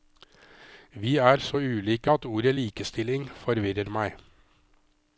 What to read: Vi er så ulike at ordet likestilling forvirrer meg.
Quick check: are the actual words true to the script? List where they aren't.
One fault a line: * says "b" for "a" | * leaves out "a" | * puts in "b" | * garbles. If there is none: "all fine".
all fine